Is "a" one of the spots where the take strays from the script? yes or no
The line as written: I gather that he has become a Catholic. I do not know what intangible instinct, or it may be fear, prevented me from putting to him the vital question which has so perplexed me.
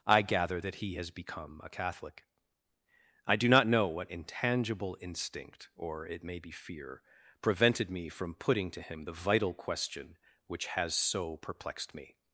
no